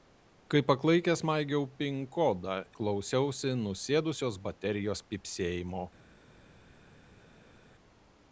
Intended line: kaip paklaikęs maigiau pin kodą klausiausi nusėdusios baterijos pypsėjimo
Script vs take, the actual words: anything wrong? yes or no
no